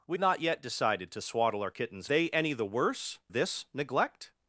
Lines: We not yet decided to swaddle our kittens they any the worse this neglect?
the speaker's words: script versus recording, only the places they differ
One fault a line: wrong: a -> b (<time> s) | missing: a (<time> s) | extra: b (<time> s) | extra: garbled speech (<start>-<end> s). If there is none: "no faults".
no faults